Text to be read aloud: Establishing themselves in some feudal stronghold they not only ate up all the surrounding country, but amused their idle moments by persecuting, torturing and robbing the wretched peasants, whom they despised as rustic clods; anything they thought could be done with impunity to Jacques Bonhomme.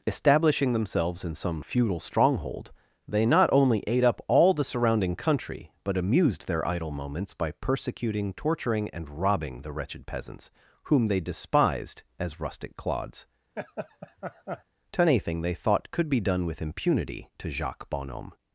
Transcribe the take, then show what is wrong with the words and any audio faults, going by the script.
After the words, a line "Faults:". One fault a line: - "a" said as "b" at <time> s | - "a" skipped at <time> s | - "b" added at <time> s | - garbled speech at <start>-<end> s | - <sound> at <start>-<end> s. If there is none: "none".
Establishing themselves in some feudal stronghold they not only ate up all the surrounding country, but amused their idle moments by persecuting, torturing and robbing the wretched peasants, whom they despised as rustic clods; to anything they thought could be done with impunity to Jacques Bonhomme.
Faults:
- laugh at 13.6-14.6 s
- "to" added at 14.9 s